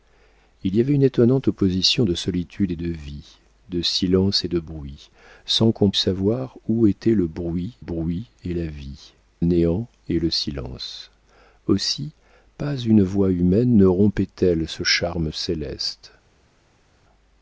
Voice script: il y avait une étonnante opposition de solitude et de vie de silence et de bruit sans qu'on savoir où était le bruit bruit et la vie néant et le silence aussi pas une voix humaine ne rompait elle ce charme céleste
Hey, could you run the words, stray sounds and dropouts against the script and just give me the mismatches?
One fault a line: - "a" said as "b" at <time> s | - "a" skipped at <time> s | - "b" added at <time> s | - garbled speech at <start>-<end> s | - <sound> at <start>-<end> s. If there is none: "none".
none